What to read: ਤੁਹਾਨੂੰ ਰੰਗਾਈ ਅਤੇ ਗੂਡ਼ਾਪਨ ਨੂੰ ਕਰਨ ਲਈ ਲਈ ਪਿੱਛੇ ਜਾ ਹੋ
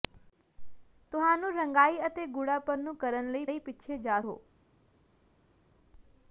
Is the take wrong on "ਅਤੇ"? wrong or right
right